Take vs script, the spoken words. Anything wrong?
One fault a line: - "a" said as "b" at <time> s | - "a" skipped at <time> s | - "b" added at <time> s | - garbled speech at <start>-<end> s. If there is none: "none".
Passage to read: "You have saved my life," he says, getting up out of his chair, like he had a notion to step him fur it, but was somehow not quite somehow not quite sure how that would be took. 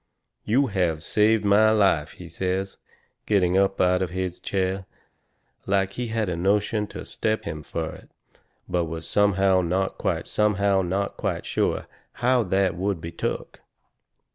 none